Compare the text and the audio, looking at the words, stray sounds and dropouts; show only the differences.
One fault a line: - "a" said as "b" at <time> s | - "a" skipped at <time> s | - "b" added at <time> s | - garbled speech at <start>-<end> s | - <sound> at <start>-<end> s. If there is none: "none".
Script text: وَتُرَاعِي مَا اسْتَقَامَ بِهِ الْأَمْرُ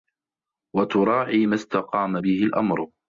none